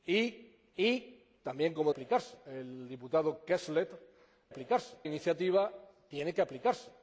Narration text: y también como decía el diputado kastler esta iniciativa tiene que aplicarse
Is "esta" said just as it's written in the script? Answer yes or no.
no